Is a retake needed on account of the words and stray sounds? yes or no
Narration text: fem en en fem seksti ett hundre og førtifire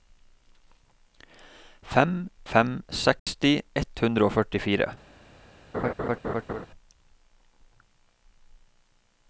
yes